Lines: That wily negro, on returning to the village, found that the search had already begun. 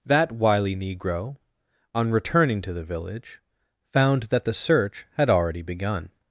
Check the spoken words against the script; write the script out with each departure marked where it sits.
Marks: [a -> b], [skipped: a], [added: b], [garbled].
That wily negro, on returning to the village, found that the search had already begun.